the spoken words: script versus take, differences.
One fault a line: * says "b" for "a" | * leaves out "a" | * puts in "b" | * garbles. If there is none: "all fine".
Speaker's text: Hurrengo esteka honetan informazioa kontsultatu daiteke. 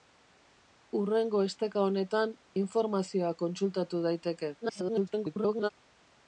* garbles